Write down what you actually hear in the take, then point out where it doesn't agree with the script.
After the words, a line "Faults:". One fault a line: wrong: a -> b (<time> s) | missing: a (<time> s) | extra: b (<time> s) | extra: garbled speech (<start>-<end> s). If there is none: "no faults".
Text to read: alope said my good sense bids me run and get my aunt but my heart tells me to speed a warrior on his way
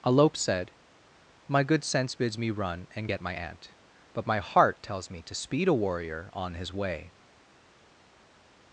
alope said my good sense bids me run and get my aunt but my heart tells me to speed a warrior on his way
Faults:
no faults